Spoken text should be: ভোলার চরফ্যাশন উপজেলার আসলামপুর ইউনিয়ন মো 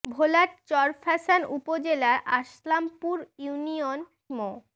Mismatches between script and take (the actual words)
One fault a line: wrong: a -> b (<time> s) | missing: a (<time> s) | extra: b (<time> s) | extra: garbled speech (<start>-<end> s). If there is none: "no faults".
no faults